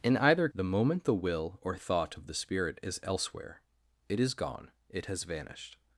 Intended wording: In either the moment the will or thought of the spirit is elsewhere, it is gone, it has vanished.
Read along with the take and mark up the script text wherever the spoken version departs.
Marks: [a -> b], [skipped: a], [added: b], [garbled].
In either the moment the will or thought of the spirit is elsewhere, it is gone, it has vanished.